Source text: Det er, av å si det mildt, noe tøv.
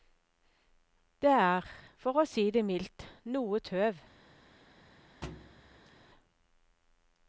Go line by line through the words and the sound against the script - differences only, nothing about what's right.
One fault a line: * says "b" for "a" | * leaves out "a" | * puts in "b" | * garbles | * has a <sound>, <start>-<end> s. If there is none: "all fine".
* says "for" for "av"
* has a thud, 5.2-5.9 s